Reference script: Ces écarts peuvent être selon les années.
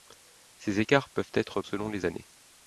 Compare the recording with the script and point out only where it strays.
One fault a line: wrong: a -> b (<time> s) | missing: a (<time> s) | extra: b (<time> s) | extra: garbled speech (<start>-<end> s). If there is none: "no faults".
no faults